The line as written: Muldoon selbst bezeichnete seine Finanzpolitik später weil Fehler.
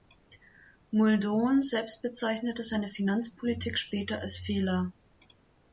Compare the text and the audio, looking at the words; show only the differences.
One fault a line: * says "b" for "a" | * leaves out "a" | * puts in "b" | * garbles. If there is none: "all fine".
* says "als" for "weil"